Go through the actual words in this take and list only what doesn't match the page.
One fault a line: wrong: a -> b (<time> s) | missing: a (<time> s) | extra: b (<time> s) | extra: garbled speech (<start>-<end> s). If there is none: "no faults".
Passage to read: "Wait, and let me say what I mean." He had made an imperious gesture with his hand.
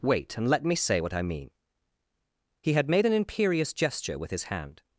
no faults